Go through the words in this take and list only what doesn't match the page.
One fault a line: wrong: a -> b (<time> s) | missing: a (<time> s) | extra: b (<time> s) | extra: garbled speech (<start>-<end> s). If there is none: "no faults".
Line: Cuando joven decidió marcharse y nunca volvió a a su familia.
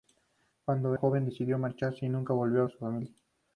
no faults